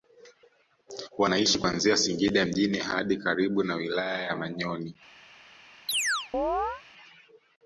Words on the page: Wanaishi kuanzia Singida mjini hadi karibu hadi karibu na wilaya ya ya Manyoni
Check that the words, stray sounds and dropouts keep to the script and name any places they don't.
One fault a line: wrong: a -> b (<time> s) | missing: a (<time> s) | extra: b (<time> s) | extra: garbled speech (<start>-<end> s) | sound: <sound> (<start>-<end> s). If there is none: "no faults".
missing: hadi karibu (3.6 s)
missing: ya (4.3 s)
sound: chirp (5.9-6.8 s)